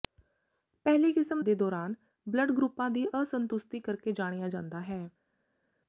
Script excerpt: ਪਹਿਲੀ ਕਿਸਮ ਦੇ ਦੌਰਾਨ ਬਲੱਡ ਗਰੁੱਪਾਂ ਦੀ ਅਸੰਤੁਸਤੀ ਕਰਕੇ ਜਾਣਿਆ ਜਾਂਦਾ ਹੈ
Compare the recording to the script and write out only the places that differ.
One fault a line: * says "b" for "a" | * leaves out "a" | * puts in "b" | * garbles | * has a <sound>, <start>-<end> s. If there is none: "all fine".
all fine